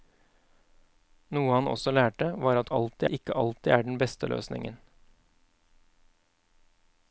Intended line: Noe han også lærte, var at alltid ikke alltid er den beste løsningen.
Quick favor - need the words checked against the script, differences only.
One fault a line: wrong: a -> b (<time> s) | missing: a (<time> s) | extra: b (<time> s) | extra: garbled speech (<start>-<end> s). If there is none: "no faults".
no faults